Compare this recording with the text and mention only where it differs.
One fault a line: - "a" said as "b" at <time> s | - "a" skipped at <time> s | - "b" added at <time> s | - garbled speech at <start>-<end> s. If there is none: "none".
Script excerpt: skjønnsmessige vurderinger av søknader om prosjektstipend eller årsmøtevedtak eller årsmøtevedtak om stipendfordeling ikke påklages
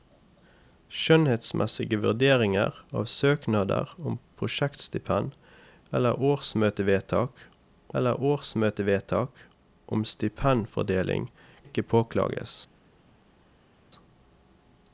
none